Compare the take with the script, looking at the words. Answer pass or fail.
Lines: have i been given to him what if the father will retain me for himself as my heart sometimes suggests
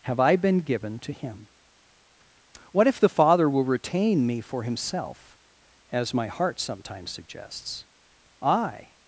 fail